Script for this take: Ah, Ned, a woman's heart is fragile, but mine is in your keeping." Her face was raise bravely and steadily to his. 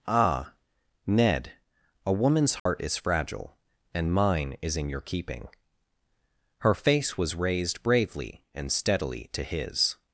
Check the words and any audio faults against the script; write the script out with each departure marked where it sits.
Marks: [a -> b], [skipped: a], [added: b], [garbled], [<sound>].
Ah, Ned, a woman's heart [dropout] is fragile, [but -> and] mine is in your keeping." Her face was [raise -> raised] bravely and steadily to his.